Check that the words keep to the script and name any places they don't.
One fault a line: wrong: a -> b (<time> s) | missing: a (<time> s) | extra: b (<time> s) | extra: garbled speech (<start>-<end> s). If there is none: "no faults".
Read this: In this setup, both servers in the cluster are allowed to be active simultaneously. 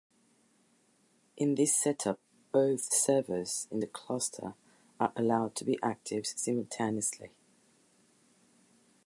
no faults